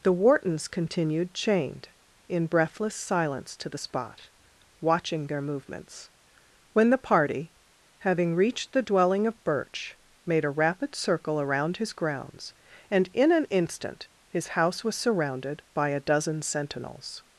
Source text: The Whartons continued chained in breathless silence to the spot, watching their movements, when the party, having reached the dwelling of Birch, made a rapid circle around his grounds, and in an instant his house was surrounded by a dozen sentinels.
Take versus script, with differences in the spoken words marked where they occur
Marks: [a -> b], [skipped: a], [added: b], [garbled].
The Whartons continued chained in breathless silence to the spot, watching their movements, when the party, having reached the dwelling of Birch, made a rapid circle around his grounds, and in an instant his house was surrounded by a dozen sentinels.